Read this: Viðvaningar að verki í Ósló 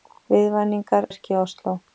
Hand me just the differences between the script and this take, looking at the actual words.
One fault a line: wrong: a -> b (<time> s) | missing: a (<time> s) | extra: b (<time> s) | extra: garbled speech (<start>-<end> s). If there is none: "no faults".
missing: að (1.1 s)